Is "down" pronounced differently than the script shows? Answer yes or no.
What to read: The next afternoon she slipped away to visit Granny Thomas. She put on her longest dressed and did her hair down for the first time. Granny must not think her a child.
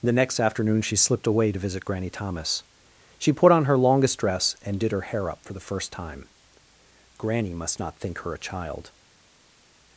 yes